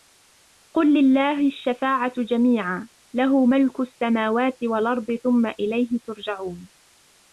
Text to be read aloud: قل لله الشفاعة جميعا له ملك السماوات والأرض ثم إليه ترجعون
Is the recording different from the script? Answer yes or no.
no